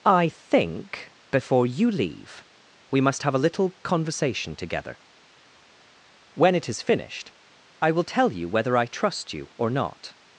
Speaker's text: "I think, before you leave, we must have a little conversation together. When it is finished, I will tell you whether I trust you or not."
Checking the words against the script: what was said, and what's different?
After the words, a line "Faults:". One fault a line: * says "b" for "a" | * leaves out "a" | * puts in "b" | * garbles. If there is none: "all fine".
"I think, before you leave, we must have a little conversation together. When it is finished, I will tell you whether I trust you or not."
Faults:
all fine